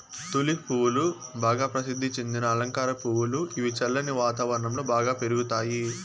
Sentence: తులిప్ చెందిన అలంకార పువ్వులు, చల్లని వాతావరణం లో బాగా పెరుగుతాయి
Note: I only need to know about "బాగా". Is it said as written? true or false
true